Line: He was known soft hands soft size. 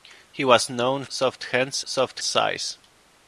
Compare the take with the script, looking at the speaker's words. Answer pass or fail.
pass